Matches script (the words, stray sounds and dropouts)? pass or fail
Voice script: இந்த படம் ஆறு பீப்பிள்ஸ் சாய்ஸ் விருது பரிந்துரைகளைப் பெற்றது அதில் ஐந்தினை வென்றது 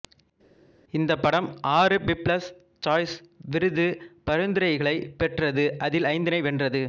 pass